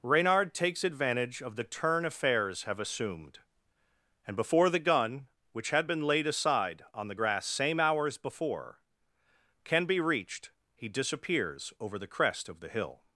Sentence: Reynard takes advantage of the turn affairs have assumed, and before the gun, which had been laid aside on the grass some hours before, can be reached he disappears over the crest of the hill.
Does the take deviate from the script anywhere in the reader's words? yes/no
yes